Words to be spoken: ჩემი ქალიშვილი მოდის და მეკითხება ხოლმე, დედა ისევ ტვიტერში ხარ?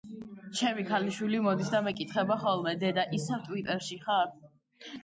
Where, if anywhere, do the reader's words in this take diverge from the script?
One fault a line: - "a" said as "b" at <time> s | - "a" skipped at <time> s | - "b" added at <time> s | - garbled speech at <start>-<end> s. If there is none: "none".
none